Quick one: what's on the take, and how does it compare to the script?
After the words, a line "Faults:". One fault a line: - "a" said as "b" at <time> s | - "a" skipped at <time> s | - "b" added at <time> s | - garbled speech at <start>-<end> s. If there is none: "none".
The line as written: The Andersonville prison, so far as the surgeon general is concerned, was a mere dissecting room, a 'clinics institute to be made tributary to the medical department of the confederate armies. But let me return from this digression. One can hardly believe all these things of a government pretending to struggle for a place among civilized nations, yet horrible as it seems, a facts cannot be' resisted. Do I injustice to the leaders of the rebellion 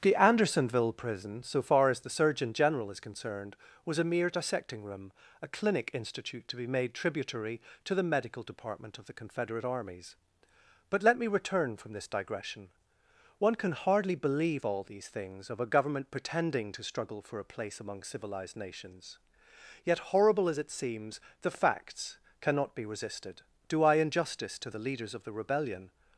The Andersonville prison, so far as the surgeon general is concerned, was a mere dissecting room, a 'clinic institute to be made tributary to the medical department of the confederate armies. But let me return from this digression. One can hardly believe all these things of a government pretending to struggle for a place among civilized nations, yet horrible as it seems, the facts cannot be' resisted. Do I injustice to the leaders of the rebellion
Faults:
- "clinics" said as "clinic" at 5.5 s
- "a" said as "the" at 21.4 s